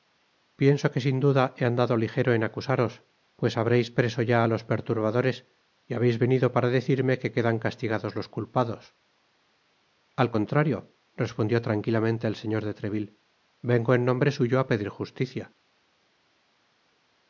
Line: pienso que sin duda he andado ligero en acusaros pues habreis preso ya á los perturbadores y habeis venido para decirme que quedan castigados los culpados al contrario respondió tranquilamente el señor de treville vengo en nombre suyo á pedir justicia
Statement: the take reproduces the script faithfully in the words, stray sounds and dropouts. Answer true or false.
true